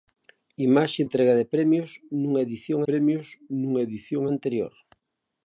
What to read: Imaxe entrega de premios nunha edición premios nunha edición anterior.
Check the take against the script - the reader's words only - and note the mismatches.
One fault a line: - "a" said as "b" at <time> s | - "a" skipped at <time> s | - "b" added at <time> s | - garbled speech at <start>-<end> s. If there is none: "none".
none